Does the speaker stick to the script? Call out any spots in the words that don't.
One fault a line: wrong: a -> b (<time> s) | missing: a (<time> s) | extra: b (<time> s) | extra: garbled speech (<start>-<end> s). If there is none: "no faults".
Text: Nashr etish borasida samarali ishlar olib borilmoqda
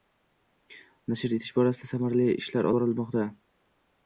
missing: olib (2.7 s)